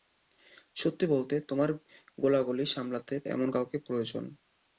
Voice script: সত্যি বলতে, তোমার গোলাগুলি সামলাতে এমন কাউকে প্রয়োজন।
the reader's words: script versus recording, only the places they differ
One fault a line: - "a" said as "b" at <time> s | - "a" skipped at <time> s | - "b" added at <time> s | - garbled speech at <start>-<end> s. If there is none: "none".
none